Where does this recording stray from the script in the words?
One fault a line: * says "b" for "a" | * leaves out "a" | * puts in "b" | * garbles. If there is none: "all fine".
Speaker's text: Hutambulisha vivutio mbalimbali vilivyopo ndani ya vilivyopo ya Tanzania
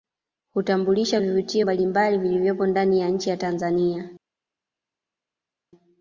* says "nchi" for "vilivyopo"